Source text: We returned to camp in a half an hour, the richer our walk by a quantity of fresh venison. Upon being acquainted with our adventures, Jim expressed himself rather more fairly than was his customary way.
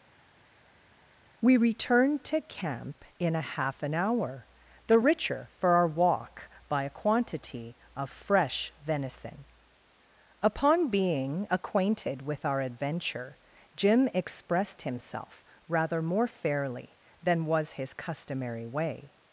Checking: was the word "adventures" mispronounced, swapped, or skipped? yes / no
yes